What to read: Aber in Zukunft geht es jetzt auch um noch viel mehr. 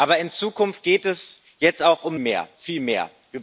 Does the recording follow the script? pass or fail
fail